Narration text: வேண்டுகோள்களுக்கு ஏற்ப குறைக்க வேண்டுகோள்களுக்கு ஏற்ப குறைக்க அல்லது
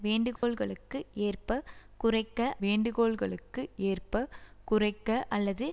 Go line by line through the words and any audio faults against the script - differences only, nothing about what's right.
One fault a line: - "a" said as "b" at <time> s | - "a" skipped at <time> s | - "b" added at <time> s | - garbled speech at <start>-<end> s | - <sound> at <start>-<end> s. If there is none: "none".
- dropout at 0.4-0.4 s